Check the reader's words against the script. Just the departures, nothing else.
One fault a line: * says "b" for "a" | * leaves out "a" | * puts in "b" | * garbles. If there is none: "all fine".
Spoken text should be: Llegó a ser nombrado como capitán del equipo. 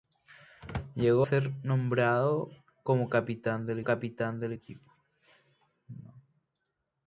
* leaves out "a"
* puts in "capitán del"